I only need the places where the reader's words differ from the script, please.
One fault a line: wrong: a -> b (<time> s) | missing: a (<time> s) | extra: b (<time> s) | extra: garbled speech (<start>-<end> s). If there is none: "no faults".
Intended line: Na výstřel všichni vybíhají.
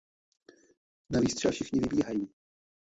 no faults